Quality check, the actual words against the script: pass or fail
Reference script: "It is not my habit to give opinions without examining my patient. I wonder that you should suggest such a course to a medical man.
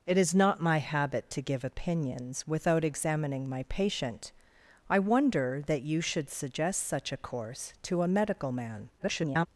fail